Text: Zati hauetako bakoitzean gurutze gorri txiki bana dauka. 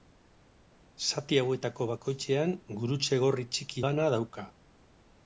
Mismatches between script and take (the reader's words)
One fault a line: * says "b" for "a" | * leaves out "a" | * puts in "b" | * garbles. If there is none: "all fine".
all fine